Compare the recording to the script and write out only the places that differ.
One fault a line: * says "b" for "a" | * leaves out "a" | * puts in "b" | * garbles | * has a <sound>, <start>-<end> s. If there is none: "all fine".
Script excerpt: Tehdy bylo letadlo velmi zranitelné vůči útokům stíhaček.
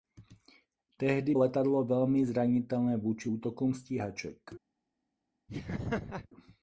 * leaves out "bylo"
* has a laugh, 5.5-6.3 s